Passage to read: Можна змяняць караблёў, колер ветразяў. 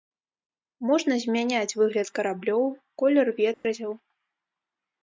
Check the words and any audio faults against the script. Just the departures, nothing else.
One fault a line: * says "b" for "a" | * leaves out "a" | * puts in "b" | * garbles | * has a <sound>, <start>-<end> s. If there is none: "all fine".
* puts in "выгляд"
* has a dropout, 3.5-3.6 s